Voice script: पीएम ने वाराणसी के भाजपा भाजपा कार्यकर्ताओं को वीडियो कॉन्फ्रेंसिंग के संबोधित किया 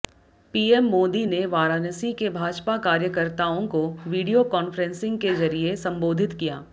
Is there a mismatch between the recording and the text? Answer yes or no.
yes